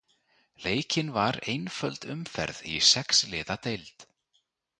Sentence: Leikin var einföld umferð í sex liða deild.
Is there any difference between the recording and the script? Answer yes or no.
no